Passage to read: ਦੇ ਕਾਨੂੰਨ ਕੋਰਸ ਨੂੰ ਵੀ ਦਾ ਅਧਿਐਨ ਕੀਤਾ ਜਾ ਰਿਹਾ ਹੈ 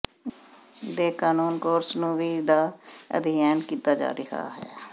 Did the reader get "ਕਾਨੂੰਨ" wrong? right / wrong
right